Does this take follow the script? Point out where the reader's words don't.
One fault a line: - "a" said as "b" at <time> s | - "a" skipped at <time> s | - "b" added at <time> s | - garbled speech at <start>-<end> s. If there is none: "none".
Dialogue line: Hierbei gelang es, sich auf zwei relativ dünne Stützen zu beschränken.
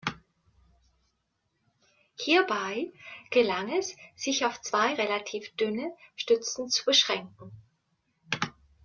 none